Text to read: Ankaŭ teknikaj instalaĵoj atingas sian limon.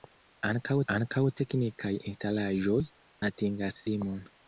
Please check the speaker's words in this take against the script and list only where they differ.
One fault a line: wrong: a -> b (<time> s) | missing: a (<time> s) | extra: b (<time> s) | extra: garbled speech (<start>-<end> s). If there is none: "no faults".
extra: ankaŭ (1.0 s)
missing: sian (3.8 s)